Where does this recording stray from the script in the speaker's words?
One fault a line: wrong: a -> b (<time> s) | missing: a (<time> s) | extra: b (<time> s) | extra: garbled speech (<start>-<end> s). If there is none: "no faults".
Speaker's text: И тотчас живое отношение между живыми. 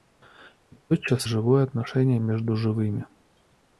no faults